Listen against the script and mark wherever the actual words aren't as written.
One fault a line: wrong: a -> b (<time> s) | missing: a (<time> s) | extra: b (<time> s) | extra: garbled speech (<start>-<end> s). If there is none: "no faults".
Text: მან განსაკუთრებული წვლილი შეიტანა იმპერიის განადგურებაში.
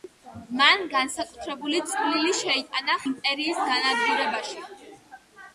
no faults